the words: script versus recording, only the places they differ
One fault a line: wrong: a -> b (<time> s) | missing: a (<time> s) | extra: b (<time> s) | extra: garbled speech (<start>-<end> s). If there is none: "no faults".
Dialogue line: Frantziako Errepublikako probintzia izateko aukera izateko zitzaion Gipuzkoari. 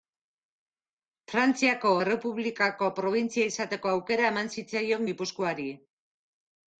wrong: izateko -> eman (4.3 s)